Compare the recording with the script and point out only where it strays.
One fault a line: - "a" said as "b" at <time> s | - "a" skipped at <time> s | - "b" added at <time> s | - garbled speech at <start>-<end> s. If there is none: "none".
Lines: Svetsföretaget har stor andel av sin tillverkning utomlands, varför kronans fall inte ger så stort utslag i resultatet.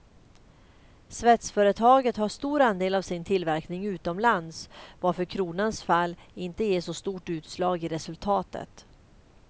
none